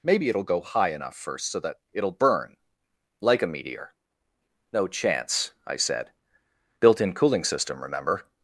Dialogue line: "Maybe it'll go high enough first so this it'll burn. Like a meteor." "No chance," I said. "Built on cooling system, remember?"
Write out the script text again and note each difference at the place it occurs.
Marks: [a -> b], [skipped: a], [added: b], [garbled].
"Maybe it'll go high enough first so [this -> that] it'll burn. Like a meteor." "No chance," I said. "Built [on -> in] cooling system, remember?"